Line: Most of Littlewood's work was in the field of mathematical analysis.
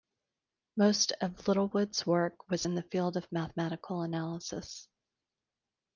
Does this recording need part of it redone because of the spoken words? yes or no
no